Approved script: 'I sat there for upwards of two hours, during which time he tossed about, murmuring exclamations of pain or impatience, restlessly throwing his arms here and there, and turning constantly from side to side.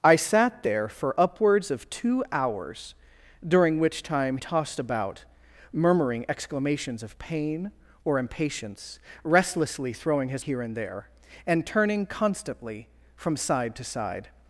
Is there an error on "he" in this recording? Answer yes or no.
yes